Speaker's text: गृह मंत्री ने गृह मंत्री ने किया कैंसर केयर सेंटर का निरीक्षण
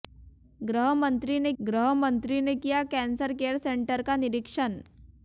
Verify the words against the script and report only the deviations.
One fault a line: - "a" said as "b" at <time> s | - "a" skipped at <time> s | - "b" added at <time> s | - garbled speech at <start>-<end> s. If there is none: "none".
none